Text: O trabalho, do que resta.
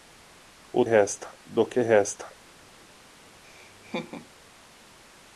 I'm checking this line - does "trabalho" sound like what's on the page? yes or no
no